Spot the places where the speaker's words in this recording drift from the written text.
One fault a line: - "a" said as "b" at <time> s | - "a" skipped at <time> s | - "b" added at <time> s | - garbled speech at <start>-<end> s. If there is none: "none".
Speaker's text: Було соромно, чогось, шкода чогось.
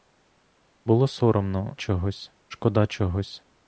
none